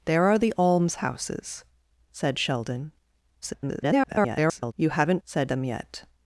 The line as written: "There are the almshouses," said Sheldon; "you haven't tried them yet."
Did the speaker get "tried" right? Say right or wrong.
wrong